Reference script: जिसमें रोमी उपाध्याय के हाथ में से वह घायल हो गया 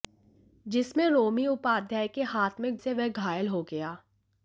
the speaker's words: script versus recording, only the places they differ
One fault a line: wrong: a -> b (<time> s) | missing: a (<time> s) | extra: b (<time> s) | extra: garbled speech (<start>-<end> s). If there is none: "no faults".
no faults